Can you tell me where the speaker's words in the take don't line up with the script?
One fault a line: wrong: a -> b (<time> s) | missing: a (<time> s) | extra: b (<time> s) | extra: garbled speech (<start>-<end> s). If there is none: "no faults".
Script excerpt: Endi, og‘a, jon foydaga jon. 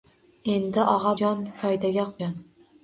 no faults